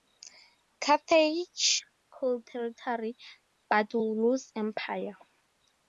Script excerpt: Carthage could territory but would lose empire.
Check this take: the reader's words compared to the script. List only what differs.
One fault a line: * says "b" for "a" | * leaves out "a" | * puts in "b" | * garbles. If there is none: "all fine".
all fine